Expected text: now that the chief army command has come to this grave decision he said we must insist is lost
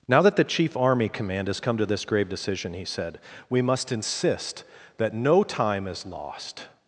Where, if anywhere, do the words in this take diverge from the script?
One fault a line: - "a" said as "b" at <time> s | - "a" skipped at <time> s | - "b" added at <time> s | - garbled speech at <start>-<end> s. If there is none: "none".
- "that no time" added at 5.0 s